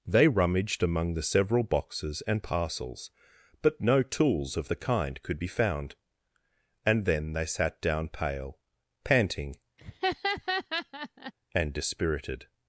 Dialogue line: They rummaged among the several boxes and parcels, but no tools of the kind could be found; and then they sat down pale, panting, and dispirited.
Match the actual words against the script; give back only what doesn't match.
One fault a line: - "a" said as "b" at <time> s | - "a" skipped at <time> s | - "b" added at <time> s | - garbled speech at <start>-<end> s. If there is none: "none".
none